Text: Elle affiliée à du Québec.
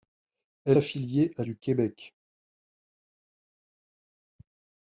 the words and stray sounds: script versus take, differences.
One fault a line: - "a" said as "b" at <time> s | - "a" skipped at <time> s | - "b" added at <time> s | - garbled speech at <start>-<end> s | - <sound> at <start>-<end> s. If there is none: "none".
none